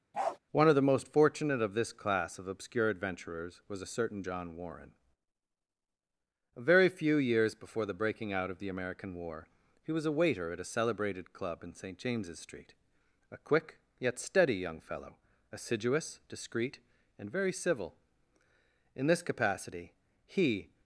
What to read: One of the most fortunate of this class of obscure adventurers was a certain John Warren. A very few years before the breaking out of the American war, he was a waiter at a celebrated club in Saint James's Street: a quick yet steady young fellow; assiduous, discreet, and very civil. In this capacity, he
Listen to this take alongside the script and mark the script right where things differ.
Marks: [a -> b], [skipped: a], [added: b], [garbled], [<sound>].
[bark] One of the most fortunate of this class of obscure adventurers was a certain John Warren. A very few years before the breaking out of the American war, he was a waiter at a celebrated club in Saint James's Street: a quick yet steady young fellow; assiduous, discreet, and very civil. In this capacity, he